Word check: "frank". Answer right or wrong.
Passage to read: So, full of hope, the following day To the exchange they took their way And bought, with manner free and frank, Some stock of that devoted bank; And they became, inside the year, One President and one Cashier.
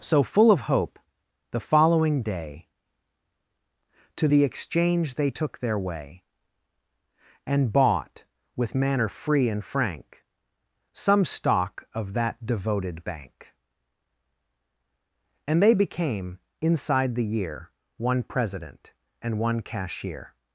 right